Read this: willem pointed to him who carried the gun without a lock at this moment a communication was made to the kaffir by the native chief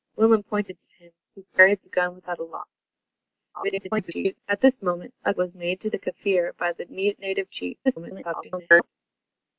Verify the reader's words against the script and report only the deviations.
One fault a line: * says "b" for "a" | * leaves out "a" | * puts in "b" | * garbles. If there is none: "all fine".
* garbles
* leaves out "communication"
* garbles